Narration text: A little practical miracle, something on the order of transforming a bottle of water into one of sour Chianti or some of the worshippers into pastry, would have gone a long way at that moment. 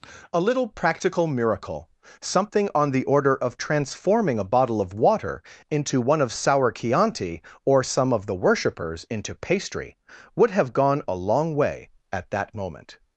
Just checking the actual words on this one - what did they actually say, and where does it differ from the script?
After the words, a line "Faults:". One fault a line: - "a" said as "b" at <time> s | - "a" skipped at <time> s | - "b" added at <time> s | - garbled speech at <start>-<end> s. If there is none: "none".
A little practical miracle, something on the order of transforming a bottle of water into one of sour Chianti or some of the worshippers into pastry, would have gone a long way at that moment.
Faults:
none